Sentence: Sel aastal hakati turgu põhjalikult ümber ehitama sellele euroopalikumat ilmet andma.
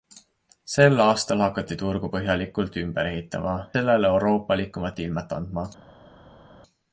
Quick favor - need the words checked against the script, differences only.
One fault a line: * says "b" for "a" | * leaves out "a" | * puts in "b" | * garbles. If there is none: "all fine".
all fine